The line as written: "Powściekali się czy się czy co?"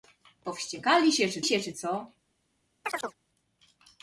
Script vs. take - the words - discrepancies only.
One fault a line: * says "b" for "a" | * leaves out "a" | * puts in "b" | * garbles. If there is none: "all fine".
all fine